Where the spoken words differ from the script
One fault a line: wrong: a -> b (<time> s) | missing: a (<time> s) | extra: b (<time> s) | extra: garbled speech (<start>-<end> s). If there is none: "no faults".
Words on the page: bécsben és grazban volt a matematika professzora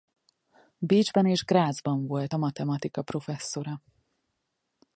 no faults